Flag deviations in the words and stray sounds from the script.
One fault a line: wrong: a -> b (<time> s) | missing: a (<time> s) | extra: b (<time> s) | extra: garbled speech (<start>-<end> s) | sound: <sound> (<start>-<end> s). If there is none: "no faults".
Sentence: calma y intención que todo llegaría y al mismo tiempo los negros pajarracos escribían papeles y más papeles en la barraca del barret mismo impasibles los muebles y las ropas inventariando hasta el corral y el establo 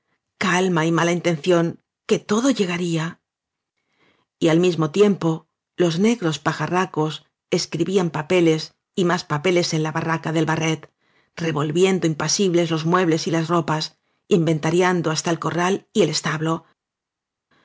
extra: mala (0.9 s)
wrong: mismo -> revolviendo (11.3 s)